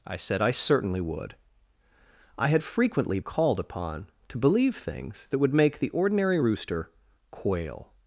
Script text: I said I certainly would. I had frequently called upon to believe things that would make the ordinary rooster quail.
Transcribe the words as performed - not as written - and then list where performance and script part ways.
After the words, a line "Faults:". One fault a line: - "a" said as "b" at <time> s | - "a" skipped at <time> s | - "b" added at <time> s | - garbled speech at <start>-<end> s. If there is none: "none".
I said I certainly would. I had frequently called upon to believe things that would make the ordinary rooster quail.
Faults:
none